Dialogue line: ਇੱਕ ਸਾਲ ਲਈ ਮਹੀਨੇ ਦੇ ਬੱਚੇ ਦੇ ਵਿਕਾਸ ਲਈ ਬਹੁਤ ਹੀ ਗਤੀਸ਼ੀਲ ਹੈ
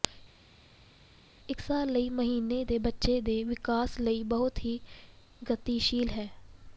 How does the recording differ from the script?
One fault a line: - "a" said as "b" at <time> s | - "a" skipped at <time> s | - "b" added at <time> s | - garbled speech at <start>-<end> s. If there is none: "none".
none